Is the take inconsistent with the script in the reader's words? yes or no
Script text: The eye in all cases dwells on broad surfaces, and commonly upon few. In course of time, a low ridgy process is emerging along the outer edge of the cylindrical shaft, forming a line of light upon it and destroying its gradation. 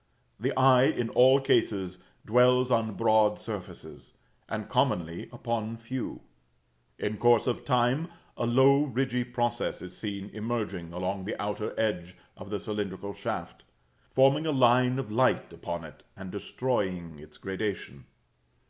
yes